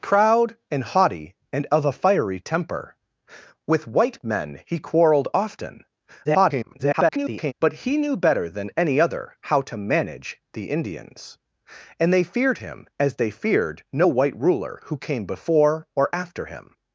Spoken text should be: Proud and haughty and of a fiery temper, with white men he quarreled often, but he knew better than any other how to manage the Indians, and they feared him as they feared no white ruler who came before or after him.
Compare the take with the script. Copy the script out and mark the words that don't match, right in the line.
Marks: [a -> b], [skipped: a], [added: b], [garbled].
Proud and haughty and of a fiery temper, with white men he quarreled often, [garbled] but he knew better than any other how to manage the Indians, and they feared him as they feared no white ruler who came before or after him.